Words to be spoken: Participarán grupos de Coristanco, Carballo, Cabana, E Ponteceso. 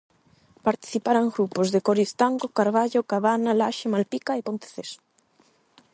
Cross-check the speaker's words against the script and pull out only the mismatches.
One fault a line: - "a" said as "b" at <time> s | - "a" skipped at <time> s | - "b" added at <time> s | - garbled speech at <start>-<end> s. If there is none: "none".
- "Laxe Malpica" added at 3.6 s